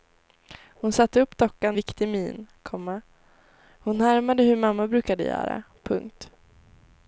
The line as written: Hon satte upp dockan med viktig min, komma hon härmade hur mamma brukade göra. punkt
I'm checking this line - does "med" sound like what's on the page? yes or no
no